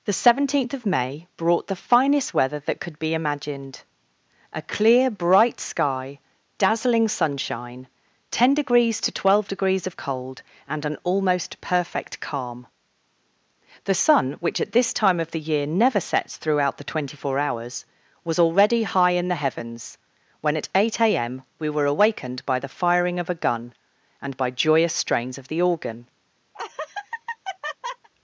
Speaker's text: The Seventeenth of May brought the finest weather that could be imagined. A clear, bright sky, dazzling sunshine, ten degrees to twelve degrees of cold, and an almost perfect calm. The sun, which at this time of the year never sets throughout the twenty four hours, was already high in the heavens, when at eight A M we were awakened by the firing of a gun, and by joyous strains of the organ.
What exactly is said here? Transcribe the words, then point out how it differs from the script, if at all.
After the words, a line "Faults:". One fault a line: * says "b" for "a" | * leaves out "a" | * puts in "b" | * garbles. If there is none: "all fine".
The Seventeenth of May brought the finest weather that could be imagined. A clear, bright sky, dazzling sunshine, ten degrees to twelve degrees of cold, and an almost perfect calm. The sun, which at this time of the year never sets throughout the twenty four hours, was already high in the heavens, when at eight A M we were awakened by the firing of a gun, and by joyous strains of the organ.
Faults:
all fine